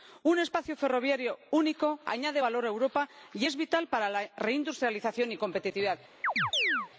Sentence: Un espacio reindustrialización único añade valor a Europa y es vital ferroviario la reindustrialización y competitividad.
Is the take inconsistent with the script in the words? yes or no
yes